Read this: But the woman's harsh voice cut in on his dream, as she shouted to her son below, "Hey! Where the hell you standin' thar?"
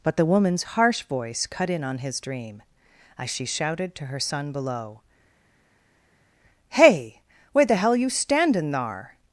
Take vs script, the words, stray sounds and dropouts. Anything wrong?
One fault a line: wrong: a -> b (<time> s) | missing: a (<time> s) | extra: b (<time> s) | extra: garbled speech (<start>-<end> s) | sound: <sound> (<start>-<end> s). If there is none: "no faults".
no faults